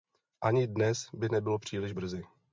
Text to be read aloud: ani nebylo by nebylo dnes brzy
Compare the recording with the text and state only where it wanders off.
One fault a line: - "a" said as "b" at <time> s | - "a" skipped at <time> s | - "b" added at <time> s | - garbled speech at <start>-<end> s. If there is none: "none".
- "nebylo" said as "dnes" at 0.7 s
- "dnes" said as "příliš" at 1.6 s